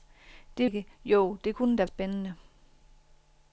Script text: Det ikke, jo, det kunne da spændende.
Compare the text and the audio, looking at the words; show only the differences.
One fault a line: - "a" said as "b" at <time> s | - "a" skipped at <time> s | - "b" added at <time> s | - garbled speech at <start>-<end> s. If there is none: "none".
none